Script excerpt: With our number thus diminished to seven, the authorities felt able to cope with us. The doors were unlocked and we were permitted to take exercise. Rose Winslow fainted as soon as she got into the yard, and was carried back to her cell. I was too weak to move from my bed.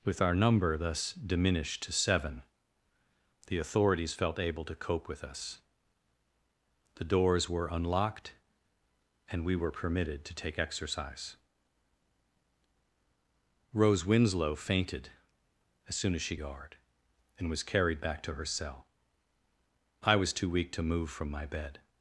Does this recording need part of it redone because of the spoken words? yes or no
yes